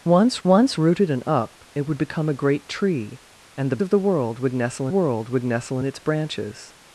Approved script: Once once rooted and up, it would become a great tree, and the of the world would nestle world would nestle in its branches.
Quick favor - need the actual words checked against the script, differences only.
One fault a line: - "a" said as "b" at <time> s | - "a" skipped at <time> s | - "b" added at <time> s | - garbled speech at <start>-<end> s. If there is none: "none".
none